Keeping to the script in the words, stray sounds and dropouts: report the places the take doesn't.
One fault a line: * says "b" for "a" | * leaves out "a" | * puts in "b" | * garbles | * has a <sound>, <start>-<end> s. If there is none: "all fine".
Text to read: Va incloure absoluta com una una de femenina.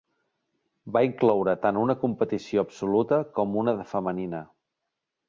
* puts in "tant una competició"
* leaves out "una"